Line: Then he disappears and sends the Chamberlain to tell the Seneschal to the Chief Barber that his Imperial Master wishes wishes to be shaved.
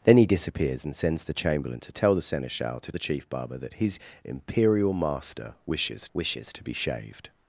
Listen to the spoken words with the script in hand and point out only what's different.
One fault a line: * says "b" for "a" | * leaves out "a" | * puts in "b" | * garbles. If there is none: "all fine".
all fine